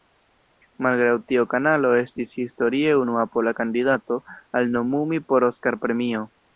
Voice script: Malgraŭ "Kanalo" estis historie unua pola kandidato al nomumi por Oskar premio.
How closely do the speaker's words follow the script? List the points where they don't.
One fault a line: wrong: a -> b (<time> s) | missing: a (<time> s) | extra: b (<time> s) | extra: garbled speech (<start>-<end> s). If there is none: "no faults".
extra: tio (1.3 s)